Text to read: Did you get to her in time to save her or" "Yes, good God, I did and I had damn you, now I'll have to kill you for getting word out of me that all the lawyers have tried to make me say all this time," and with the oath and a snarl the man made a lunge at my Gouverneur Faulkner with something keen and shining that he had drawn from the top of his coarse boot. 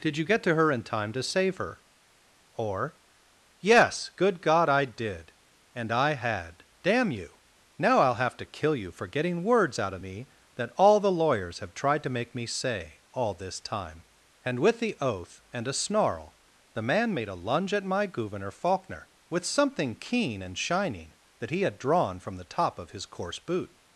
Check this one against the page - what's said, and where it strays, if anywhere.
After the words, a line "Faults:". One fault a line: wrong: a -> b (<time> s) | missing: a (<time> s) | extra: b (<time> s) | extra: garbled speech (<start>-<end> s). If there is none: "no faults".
Did you get to her in time to save her or" "Yes, good God, I did and I had damn you, now I'll have to kill you for getting words out of me that all the lawyers have tried to make me say all this time," and with the oath and a snarl the man made a lunge at my Gouverneur Faulkner with something keen and shining that he had drawn from the top of his coarse boot.
Faults:
wrong: word -> words (9.4 s)